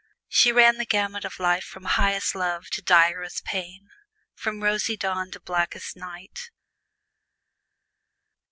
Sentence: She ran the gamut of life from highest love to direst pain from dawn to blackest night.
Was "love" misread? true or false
false